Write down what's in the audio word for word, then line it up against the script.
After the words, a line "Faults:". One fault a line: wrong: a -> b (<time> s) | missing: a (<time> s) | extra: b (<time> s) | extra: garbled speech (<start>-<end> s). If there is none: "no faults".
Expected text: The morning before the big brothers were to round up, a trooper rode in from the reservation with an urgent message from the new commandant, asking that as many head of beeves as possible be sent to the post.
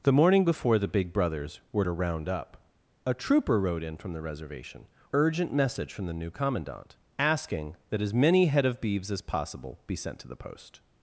The morning before the big brothers were to round up, a trooper rode in from the reservation urgent message from the new commandant, asking that as many head of beeves as possible be sent to the post.
Faults:
missing: with an (4.9 s)